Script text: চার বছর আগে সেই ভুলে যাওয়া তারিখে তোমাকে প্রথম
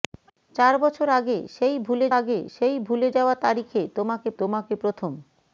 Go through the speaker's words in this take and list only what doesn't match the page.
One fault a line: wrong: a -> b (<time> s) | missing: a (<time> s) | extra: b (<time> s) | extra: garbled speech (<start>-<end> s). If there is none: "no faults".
extra: আগে সেই ভুলে (2.2 s)
extra: তোমাকে (4.4 s)